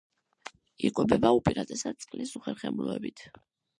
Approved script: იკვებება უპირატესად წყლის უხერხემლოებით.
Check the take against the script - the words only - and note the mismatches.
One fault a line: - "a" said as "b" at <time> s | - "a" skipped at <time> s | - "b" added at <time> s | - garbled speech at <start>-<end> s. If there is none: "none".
none